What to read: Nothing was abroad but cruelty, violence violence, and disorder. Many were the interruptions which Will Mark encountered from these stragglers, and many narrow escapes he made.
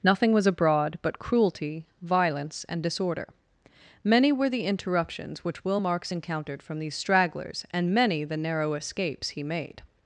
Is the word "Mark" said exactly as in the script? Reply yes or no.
no